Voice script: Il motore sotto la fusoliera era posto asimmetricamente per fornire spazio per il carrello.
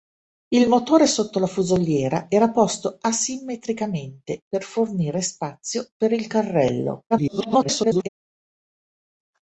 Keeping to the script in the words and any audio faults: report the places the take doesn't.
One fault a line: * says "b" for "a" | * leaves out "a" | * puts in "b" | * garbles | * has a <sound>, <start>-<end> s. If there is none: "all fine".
* garbles